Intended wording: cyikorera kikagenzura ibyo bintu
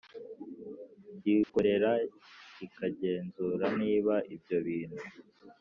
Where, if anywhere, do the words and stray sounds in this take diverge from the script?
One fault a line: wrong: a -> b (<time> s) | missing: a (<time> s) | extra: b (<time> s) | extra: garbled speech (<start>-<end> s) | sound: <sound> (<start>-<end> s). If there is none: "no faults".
sound: dropout (1.4-1.5 s)
extra: niba (3.8 s)